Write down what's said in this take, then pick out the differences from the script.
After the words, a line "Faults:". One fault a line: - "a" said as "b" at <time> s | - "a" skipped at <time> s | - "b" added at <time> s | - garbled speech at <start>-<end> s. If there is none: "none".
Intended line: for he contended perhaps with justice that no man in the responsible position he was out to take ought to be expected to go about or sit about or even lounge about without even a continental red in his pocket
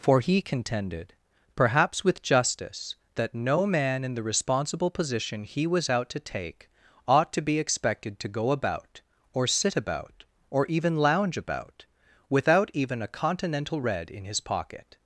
for he contended perhaps with justice that no man in the responsible position he was out to take ought to be expected to go about or sit about or even lounge about without even a continental red in his pocket
Faults:
none